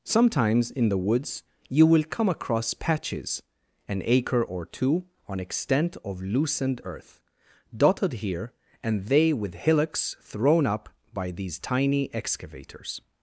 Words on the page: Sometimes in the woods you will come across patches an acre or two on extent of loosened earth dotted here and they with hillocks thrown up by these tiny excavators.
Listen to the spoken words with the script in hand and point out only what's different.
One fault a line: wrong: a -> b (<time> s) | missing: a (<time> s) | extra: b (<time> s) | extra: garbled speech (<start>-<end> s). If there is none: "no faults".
no faults